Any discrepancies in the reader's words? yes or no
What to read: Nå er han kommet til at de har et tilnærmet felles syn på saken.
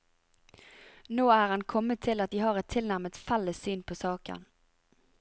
no